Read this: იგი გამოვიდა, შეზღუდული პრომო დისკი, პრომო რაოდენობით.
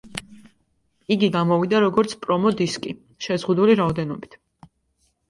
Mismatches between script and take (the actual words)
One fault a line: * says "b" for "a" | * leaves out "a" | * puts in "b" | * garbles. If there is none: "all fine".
* says "როგორც" for "შეზღუდული"
* says "შეზღუდული" for "პრომო"